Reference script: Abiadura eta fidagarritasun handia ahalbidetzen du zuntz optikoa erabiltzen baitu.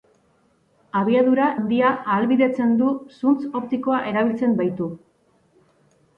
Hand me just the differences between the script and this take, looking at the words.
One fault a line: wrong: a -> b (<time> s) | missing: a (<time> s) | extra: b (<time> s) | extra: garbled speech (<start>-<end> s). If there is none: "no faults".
missing: eta fidagarritasun (1.5 s)